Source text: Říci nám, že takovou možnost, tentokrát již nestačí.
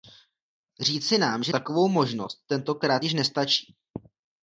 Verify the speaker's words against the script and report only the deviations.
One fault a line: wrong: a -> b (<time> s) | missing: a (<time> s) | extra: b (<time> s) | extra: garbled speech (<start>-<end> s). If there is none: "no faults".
no faults